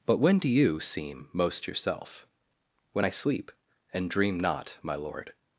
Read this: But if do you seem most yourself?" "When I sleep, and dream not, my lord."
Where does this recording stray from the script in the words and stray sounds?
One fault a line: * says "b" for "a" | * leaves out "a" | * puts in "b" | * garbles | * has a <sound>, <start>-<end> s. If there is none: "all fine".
* says "when" for "if"